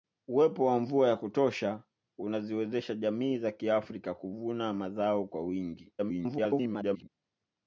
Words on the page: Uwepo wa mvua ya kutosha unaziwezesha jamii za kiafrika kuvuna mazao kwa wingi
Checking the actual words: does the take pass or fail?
fail